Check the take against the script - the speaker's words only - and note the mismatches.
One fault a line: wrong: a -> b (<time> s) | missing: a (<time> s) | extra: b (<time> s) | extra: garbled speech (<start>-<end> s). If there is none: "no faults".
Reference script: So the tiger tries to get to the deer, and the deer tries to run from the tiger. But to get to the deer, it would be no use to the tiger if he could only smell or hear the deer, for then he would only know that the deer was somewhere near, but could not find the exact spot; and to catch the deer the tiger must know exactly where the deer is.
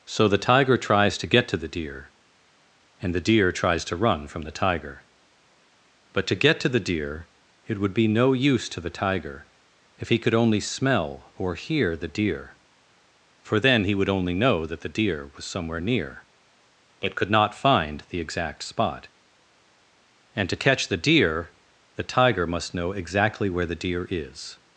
no faults